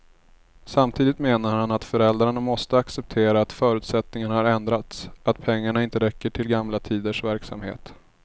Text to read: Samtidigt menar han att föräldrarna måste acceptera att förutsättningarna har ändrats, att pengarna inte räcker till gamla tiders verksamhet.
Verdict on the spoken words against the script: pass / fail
pass